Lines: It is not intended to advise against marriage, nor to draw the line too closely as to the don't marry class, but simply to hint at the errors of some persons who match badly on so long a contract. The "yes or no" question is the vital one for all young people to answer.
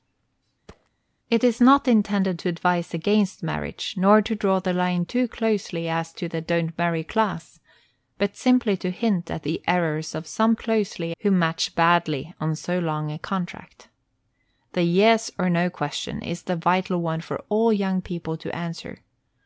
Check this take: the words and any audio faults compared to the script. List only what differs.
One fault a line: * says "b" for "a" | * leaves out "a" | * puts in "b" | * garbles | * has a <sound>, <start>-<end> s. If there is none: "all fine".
* has a thud, 0.7-0.9 s
* says "closely" for "persons"